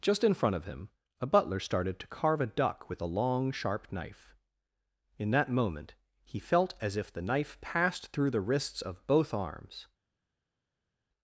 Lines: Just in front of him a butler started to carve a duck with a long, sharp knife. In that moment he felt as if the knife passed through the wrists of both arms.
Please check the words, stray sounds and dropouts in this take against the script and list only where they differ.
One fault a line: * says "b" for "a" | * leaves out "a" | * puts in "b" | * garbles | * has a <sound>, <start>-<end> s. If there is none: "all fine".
all fine